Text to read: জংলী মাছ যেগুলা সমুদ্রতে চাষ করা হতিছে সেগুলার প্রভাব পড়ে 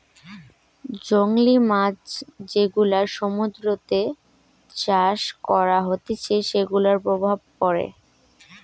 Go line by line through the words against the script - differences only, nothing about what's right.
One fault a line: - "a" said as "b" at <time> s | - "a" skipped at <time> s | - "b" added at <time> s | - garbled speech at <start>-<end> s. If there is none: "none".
none